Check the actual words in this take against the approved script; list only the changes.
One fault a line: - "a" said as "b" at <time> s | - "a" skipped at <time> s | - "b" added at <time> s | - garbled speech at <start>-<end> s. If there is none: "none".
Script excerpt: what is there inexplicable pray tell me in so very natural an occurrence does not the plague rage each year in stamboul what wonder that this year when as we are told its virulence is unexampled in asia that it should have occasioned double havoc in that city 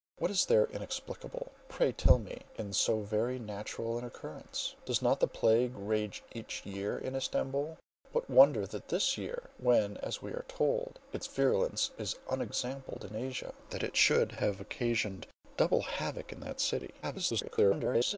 - garbled speech at 17.0-18.2 s